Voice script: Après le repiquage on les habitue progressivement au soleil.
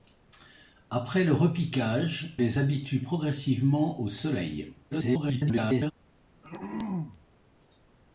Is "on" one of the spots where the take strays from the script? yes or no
yes